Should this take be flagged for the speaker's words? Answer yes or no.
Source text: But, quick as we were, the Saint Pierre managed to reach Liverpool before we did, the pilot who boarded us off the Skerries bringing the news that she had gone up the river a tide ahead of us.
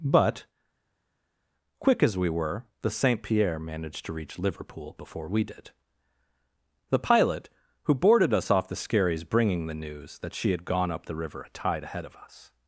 no